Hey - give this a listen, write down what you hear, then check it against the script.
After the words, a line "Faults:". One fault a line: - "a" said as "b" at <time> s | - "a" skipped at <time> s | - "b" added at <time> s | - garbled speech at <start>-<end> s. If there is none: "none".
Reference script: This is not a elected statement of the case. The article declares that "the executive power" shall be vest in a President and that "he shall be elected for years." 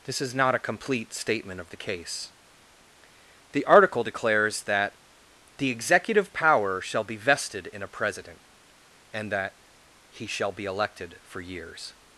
This is not a complete statement of the case. The article declares that "the executive power" shall be vested in a President and that "he shall be elected for years."
Faults:
- "elected" said as "complete" at 0.6 s
- "vest" said as "vested" at 7.2 s